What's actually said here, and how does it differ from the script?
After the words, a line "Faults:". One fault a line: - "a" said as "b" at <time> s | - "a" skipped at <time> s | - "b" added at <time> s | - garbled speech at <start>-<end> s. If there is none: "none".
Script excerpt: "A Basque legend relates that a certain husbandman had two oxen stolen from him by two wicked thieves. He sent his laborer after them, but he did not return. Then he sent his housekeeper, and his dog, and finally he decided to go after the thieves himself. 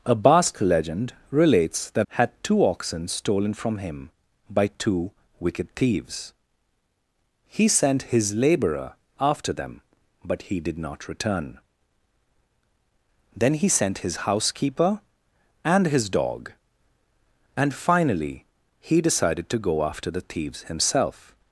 "A Basque legend relates that had two oxen stolen from him by two wicked thieves. He sent his laborer after them, but he did not return. Then he sent his housekeeper, and his dog, and finally he decided to go after the thieves himself.
Faults:
- "a certain husbandman" skipped at 2.1 s